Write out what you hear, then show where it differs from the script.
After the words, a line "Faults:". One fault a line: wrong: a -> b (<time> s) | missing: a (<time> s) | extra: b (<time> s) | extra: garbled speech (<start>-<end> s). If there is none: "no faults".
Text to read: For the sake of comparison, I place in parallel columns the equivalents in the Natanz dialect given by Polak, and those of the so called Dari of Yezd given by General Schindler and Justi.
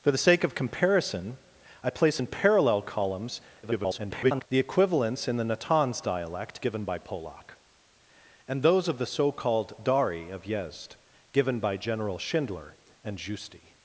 For the sake of comparison, I place in parallel columns [garbled] the equivalents in the Natanz dialect given by Polak, and those of the so called Dari of Yezd given by General Schindler and Justi.
Faults:
extra: garbled speech (3.6-4.5 s)